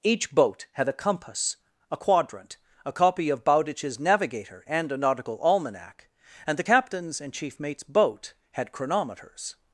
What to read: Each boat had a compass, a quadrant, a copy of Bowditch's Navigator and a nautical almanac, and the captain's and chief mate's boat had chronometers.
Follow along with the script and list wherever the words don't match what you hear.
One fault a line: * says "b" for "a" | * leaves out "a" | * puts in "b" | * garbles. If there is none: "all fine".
all fine